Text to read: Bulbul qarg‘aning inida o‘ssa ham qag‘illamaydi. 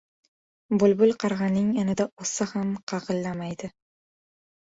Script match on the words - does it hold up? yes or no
yes